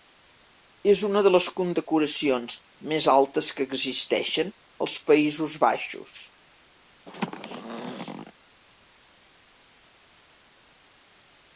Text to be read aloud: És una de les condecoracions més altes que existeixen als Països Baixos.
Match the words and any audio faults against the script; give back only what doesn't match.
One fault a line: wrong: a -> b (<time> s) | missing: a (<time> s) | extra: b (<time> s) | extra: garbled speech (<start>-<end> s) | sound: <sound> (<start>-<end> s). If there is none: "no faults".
sound: throat clearing (7.1-8.3 s)